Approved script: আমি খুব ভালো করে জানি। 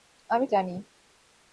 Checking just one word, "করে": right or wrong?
wrong